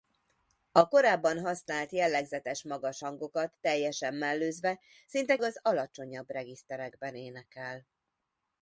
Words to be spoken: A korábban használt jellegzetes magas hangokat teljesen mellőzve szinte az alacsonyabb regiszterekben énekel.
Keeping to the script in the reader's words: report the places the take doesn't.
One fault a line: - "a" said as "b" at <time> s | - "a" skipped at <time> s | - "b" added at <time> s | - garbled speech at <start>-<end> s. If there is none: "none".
none